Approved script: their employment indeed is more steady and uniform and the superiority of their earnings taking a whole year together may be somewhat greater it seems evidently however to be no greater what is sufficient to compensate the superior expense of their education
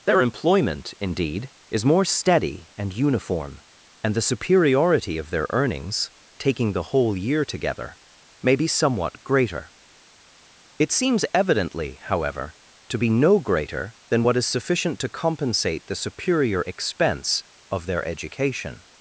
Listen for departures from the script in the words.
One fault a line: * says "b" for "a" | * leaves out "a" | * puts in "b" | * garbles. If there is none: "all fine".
* says "the" for "a"
* puts in "than"